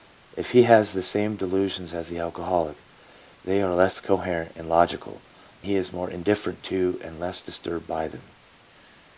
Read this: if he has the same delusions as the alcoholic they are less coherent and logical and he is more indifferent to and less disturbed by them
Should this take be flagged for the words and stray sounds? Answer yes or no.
yes